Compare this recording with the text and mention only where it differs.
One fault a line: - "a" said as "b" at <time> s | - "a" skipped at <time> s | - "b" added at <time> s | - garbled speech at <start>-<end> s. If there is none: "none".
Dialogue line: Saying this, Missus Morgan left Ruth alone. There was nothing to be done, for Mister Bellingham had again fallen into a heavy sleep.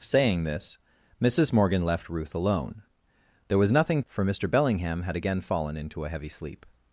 - "to be done" skipped at 4.0 s